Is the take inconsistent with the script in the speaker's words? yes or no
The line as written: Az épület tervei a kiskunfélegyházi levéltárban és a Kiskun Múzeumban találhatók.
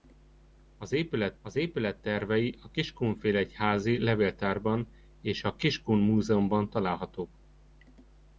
yes